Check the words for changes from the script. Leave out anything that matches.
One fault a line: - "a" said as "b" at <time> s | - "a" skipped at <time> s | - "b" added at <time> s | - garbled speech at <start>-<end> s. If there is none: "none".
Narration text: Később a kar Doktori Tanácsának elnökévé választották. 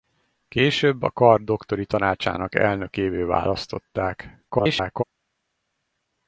- garbled speech at 4.5-5.0 s